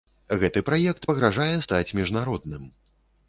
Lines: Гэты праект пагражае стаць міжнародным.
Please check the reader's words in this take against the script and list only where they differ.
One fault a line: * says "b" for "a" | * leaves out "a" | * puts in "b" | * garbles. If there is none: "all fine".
all fine